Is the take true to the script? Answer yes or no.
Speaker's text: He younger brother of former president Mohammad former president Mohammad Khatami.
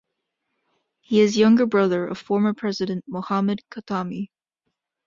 no